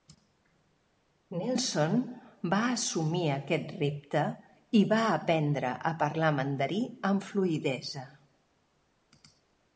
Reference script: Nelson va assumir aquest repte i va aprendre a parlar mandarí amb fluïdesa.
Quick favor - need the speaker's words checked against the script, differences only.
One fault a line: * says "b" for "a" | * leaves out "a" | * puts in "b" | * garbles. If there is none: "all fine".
all fine